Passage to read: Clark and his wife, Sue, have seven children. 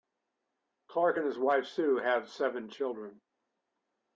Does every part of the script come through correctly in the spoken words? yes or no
yes